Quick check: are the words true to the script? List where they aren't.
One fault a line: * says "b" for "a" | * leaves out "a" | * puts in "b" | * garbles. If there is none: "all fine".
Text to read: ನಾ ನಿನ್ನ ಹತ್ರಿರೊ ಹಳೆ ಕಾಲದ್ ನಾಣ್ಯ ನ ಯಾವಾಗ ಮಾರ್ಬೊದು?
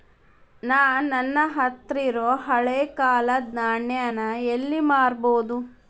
* says "ನನ್ನ" for "ನಿನ್ನ"
* says "ಎಲ್ಲಿ" for "ಯಾವಾಗ"